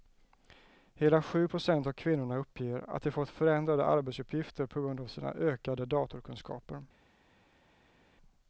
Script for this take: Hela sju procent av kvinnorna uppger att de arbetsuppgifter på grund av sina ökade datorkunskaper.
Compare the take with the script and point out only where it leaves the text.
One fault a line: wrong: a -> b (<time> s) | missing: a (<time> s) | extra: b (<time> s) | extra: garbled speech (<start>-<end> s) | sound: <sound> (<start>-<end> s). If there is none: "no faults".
extra: fått förändrade (3.1 s)